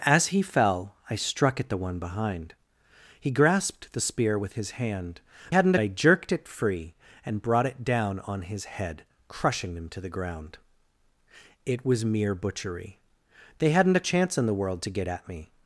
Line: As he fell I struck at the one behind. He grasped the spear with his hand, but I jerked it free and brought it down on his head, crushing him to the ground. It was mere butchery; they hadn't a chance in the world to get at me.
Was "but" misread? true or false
true